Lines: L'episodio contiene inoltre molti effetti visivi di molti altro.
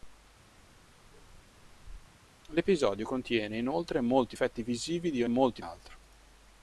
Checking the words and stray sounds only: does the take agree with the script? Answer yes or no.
no